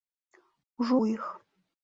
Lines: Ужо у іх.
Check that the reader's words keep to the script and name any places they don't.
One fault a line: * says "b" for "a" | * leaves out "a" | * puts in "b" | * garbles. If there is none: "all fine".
all fine